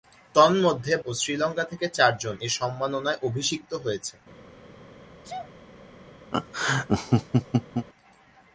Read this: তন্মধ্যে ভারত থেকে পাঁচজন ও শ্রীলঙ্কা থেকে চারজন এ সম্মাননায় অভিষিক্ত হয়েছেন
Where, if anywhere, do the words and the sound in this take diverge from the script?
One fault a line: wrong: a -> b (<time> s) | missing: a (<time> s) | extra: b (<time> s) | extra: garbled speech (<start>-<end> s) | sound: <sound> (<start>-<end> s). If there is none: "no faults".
missing: ভারত থেকে পাঁচজন (0.9 s)
sound: sneeze (5.2-5.5 s)
sound: laugh (6.3-7.9 s)